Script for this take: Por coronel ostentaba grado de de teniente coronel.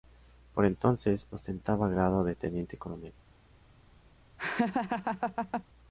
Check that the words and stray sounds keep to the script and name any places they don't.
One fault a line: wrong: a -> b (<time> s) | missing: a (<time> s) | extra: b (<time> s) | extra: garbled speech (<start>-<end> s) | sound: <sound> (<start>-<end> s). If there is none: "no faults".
wrong: coronel -> entonces (0.7 s)
missing: de (2.4 s)
sound: laugh (4.4-5.6 s)